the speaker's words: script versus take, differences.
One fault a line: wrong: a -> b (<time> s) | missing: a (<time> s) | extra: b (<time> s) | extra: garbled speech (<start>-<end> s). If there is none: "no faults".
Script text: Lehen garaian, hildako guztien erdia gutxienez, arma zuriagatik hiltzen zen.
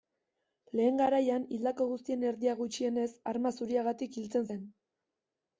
no faults